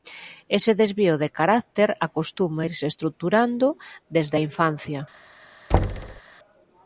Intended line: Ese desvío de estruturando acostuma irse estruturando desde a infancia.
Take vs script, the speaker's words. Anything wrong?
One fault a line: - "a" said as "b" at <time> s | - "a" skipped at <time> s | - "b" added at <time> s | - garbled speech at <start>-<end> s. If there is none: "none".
- "estruturando" said as "carácter" at 1.3 s